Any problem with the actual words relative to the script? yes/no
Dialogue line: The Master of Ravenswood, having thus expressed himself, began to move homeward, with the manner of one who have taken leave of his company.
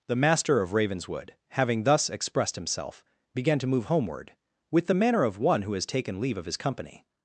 yes